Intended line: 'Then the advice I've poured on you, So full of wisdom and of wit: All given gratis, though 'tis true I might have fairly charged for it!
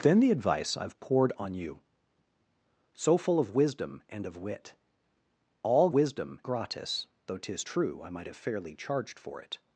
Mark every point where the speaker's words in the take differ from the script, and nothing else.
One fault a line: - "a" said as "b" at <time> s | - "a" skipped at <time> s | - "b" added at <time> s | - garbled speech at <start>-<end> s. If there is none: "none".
- "given" said as "wisdom" at 5.9 s